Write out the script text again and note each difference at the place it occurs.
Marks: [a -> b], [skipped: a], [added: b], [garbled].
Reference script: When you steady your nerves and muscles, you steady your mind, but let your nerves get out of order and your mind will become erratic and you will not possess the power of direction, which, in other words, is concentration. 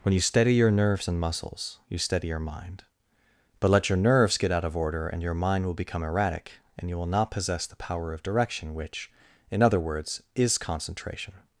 When you steady your nerves and muscles, you steady your mind, but let your nerves get out of order and your mind will become erratic and you will not possess the power of direction, which, in other words, is concentration.